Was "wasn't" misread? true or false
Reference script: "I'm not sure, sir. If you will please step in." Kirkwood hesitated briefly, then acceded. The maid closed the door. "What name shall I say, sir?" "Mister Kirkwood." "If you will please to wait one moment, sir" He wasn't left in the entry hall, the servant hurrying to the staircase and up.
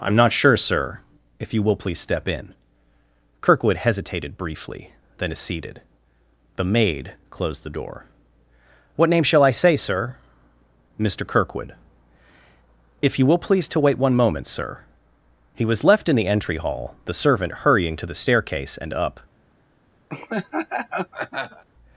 true